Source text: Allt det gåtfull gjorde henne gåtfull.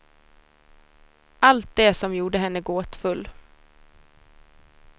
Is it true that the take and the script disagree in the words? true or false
true